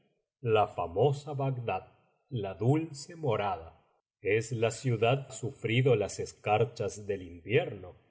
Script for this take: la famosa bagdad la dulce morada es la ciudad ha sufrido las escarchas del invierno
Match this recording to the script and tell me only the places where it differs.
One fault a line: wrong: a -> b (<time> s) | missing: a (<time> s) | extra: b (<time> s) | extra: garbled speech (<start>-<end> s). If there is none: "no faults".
no faults